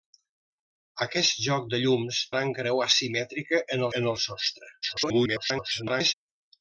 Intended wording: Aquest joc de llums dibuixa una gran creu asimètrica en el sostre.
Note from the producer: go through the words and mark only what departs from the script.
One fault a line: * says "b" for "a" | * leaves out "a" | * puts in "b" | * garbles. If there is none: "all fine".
* leaves out "dibuixa una"
* puts in "en"
* garbles